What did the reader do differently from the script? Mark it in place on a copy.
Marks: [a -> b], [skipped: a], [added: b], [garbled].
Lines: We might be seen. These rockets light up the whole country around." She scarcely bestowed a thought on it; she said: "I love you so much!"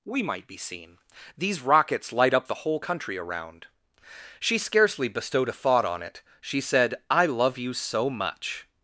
We might be seen. These rockets light up the whole country around." She scarcely bestowed a thought on it; she said: "I love you so much!"